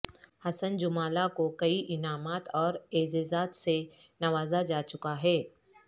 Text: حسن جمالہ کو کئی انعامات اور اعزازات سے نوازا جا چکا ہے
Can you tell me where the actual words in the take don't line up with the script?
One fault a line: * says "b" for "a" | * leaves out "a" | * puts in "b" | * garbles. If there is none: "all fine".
all fine